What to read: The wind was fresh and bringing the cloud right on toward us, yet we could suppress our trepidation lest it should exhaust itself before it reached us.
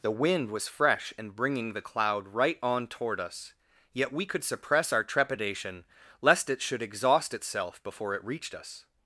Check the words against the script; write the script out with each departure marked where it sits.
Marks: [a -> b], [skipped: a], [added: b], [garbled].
The wind was fresh and bringing the cloud right on toward us, yet we could suppress our trepidation lest it should exhaust itself before it reached us.